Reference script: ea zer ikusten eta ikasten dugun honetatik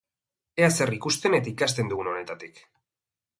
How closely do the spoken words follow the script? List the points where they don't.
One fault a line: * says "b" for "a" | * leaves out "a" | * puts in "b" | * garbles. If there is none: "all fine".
all fine